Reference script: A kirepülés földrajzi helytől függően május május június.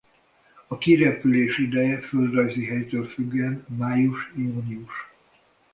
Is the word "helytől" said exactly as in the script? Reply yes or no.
yes